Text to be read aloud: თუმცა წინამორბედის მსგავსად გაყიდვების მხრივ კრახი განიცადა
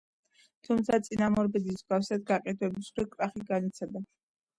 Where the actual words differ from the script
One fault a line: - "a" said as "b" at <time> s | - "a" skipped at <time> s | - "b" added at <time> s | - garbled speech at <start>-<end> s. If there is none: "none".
none